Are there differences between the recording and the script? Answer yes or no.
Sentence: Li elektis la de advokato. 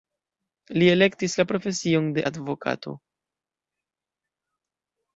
yes